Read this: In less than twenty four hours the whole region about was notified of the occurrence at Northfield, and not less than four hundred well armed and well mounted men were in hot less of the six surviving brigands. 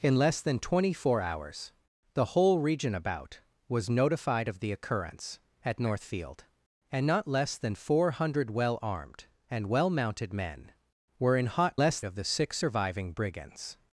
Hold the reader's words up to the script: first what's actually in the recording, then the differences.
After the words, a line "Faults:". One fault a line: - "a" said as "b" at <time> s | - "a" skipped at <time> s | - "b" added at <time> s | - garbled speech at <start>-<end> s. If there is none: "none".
In less than twenty four hours the whole region about was notified of the occurrence at Northfield, and not less than four hundred well armed and well mounted men were in hot less of the six surviving brigands.
Faults:
none